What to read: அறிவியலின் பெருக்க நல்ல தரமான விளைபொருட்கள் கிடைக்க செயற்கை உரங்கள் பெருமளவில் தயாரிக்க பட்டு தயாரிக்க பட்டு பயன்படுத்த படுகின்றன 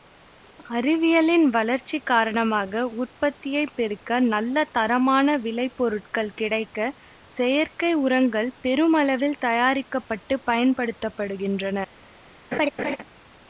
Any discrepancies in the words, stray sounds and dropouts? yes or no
yes